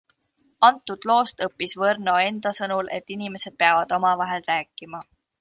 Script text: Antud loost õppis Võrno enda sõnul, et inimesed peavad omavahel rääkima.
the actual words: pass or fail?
pass